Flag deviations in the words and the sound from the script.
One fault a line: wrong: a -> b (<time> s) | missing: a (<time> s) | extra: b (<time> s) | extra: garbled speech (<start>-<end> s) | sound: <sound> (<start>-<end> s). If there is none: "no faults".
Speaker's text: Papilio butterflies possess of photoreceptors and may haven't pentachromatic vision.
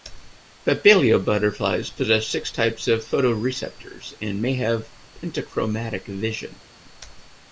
extra: six types (2.2 s)
wrong: haven't -> have (4.5 s)